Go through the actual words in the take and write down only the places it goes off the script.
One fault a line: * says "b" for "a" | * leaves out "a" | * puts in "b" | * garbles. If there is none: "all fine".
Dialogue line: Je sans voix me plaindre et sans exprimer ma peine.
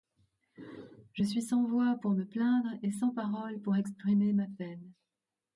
* puts in "suis"
* puts in "pour"
* puts in "paroles pour"